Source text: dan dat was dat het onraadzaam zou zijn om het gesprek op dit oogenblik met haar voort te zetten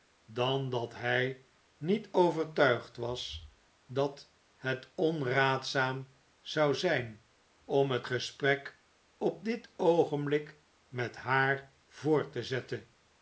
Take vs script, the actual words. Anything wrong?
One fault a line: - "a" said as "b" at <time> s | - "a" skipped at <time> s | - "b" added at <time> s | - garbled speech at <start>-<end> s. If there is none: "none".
- "hij niet overtuigd" added at 0.9 s